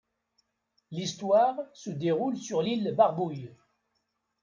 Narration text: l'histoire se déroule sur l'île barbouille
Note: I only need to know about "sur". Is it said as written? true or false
true